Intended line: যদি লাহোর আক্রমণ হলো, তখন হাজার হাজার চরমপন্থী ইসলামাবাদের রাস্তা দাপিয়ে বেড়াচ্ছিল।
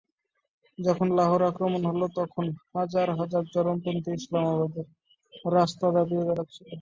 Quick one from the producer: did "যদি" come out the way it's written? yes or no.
no